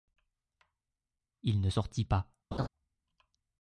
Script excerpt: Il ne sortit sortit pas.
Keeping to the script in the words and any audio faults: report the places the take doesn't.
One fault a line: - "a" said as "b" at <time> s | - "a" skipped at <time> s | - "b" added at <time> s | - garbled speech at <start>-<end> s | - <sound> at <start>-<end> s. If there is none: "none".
- "sortit" skipped at 2.0 s
- laugh at 2.5-2.7 s